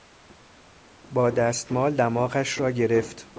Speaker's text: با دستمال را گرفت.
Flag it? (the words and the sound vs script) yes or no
yes